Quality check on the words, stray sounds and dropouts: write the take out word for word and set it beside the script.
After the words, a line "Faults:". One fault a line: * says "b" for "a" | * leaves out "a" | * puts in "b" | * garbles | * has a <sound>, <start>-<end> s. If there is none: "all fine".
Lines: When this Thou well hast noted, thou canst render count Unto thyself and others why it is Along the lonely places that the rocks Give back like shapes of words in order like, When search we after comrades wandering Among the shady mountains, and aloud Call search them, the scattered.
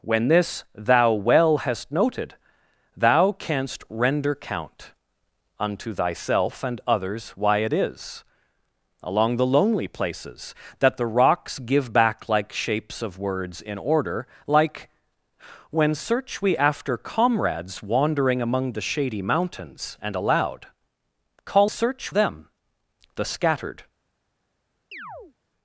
When this Thou well hast noted, thou canst render count Unto thyself and others why it is Along the lonely places that the rocks Give back like shapes of words in order like, When search we after comrades wandering Among the shady mountains, and aloud Call search them, the scattered.
Faults:
* has a chirp, 24.9-25.3 s